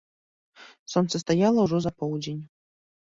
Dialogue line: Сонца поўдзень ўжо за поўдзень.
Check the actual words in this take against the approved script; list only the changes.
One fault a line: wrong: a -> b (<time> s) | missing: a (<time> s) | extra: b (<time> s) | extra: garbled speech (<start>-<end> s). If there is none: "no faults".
wrong: поўдзень -> стаяла (1.2 s)